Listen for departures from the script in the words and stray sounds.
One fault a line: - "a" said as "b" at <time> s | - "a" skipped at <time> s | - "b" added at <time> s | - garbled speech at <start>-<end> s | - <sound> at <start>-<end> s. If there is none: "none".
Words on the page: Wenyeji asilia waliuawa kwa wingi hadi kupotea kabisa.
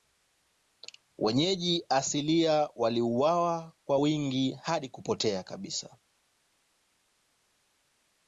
none